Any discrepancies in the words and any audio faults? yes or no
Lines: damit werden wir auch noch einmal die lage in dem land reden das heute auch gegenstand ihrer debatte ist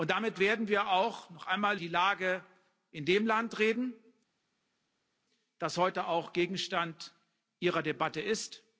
no